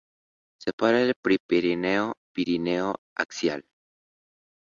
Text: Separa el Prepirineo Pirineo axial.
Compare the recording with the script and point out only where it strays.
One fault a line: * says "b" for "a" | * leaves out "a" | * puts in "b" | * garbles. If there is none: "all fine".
all fine